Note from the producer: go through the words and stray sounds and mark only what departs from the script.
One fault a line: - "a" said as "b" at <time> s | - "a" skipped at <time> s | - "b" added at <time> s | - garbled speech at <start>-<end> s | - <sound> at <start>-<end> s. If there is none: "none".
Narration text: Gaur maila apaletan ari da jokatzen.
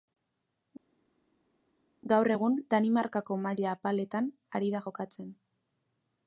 - "egun Danimarkako" added at 2.3 s